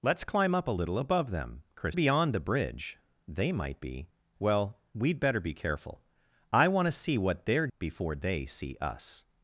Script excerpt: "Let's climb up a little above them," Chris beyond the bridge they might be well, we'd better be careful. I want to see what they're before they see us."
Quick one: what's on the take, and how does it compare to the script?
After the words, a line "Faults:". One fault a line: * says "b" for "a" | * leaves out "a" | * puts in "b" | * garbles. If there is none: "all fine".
"Let's climb up a little above them," Chris beyond the bridge they might be well, we'd better be careful. I want to see what they're before they see us."
Faults:
all fine